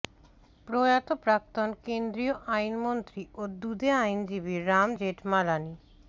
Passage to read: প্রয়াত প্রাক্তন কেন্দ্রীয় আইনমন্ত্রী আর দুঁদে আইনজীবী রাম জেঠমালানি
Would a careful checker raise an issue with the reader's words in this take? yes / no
yes